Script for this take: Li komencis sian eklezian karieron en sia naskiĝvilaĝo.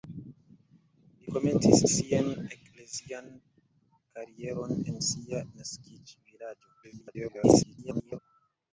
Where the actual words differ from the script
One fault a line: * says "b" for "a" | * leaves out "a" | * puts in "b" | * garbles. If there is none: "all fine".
* garbles